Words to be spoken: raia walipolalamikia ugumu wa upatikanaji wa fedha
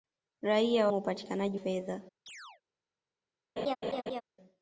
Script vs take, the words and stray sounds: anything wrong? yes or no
yes